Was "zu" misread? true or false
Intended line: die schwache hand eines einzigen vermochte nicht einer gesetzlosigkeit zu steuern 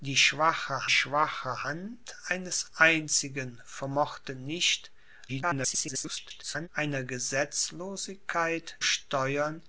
true